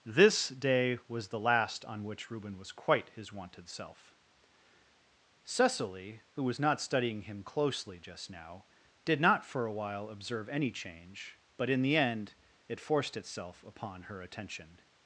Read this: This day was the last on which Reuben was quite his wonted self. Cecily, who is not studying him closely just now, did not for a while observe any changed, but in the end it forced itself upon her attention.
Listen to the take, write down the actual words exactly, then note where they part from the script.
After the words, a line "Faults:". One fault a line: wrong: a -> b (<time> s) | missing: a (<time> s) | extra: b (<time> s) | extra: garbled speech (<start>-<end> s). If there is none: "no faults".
This day was the last on which Reuben was quite his wonted self. Cecily, who was not studying him closely just now, did not for a while observe any change, but in the end it forced itself upon her attention.
Faults:
wrong: is -> was (6.4 s)
wrong: changed -> change (10.7 s)